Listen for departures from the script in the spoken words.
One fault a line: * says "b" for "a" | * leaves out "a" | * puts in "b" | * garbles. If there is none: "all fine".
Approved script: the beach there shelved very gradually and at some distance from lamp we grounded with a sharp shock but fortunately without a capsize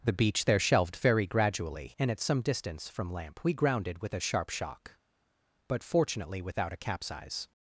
all fine